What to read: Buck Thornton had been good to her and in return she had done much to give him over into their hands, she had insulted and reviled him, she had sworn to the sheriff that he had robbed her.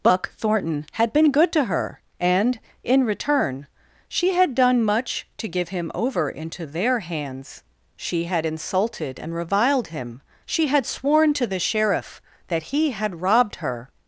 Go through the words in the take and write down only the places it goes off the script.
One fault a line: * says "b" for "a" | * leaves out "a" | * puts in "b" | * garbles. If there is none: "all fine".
all fine